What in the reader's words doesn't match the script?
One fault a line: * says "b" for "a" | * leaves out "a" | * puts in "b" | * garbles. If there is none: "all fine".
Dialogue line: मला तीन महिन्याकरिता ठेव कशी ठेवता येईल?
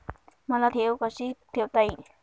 * leaves out "तीन महिन्याकरिता"